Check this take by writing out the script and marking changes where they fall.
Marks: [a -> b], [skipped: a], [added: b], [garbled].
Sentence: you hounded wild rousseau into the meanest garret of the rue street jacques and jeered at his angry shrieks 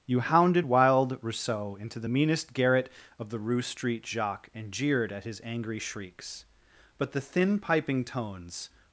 you hounded wild rousseau into the meanest garret of the rue street jacques and jeered at his angry shrieks [added: but the thin piping tones]